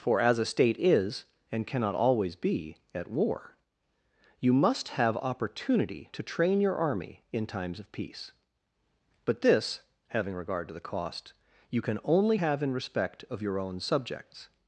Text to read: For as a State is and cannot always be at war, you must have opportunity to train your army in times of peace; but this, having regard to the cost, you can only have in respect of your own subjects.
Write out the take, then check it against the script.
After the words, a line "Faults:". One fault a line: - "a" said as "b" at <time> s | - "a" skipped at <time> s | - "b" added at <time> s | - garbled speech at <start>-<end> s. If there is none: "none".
For as a State is and cannot always be at war, you must have opportunity to train your army in times of peace; but this, having regard to the cost, you can only have in respect of your own subjects.
Faults:
none